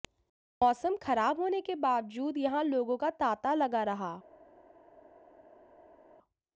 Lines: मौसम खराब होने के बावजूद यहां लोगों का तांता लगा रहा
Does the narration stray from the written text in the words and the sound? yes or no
no